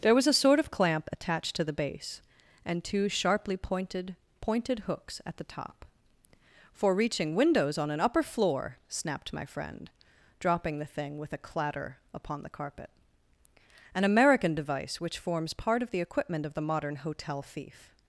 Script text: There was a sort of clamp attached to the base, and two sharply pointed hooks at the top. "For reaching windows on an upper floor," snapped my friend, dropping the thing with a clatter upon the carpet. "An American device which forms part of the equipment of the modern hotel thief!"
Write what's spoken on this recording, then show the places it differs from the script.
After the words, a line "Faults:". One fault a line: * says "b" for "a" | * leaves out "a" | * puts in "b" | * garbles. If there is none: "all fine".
There was a sort of clamp attached to the base, and two sharply pointed pointed hooks at the top. "For reaching windows on an upper floor," snapped my friend, dropping the thing with a clatter upon the carpet. "An American device which forms part of the equipment of the modern hotel thief!"
Faults:
* puts in "pointed"